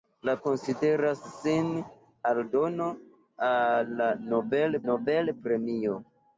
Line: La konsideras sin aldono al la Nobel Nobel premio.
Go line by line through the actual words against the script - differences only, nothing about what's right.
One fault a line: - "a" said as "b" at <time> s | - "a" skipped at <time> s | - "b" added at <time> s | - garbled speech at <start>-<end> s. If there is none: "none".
none